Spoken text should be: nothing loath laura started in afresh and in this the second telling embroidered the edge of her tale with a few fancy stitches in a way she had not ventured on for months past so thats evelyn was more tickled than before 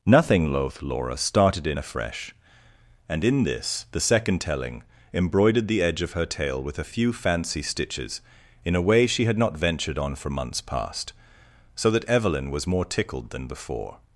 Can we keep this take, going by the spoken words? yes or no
no